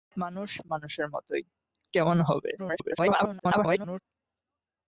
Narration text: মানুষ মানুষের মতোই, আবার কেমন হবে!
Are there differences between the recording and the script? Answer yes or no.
yes